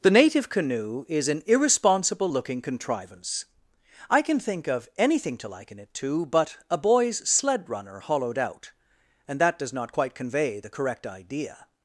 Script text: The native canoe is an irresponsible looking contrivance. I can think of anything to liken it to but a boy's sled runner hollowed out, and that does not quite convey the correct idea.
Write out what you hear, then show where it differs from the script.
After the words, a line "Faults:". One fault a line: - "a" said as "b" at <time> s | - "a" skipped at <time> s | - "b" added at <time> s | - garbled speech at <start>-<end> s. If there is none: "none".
The native canoe is an irresponsible looking contrivance. I can think of anything to liken it to but a boy's sled runner hollowed out, and that does not quite convey the correct idea.
Faults:
none